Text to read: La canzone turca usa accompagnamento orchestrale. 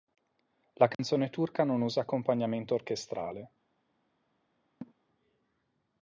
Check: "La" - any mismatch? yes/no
no